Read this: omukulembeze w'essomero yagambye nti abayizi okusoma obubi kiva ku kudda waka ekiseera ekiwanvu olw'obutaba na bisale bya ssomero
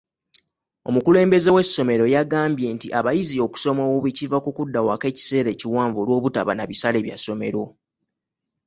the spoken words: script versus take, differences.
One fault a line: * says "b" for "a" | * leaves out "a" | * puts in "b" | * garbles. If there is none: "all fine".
all fine